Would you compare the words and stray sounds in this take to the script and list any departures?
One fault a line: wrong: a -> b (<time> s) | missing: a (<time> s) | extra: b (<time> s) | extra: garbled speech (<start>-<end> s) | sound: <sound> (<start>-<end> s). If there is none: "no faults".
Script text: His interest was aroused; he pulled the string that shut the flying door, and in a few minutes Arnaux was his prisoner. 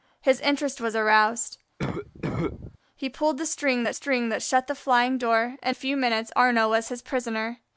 sound: cough (1.8-2.8 s)
extra: string that (3.9 s)
missing: in (5.8 s)